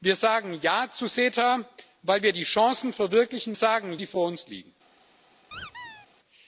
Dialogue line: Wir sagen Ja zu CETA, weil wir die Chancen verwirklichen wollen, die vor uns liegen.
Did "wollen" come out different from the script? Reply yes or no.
yes